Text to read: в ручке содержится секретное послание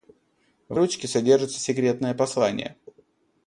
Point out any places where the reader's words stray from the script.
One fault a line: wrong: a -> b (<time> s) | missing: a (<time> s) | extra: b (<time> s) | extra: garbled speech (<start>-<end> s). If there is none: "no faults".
no faults